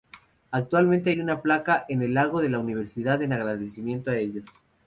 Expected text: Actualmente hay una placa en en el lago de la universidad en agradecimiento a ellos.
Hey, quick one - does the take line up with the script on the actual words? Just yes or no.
no